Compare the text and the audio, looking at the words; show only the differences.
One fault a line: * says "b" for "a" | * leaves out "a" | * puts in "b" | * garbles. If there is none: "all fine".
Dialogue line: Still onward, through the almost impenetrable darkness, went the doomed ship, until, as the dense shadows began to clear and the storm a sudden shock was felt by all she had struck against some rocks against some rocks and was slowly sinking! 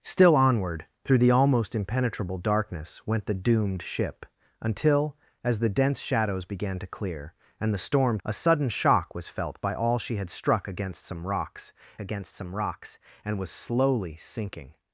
all fine